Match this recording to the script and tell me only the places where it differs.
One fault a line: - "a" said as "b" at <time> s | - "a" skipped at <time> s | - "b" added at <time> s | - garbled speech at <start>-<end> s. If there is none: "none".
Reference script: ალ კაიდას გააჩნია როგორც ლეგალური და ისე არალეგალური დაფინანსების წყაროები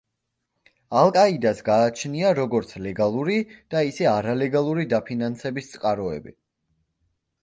none